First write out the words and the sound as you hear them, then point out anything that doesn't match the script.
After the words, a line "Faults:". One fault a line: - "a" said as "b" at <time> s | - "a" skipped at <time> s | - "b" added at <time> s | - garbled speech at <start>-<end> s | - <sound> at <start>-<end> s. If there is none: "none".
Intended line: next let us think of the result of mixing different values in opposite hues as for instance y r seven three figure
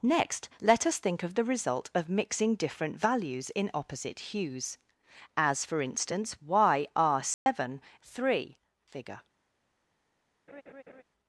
next let us think of the result of mixing different values in opposite hues as for instance y r seven three figure
Faults:
- dropout at 7.3-7.5 s
- laugh at 10.5-11.0 s